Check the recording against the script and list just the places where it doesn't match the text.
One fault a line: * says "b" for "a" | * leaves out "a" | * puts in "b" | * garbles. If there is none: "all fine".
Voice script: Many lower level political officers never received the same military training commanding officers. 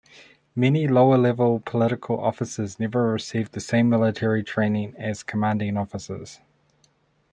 * puts in "as"